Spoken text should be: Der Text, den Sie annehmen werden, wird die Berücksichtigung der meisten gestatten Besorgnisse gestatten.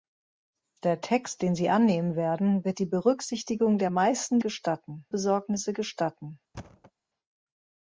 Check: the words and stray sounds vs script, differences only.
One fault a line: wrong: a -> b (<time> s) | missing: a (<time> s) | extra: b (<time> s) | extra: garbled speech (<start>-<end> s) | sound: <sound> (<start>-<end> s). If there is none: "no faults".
sound: thud (6.5-6.9 s)